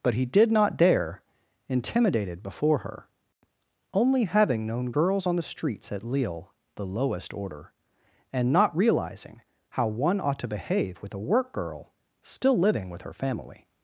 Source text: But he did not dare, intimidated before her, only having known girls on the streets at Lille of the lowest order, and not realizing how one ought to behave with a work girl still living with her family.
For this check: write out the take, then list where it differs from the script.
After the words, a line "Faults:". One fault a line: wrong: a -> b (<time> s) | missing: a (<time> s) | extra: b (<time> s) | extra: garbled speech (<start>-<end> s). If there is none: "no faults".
But he did not dare, intimidated before her, only having known girls on the streets at Lille the lowest order, and not realizing how one ought to behave with a work girl still living with her family.
Faults:
missing: of (6.5 s)